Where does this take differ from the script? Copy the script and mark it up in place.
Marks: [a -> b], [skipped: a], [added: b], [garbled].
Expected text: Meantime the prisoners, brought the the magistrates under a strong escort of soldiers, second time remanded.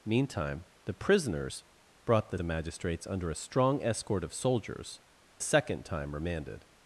Meantime the prisoners, brought the the magistrates under a strong escort of soldiers, second time remanded.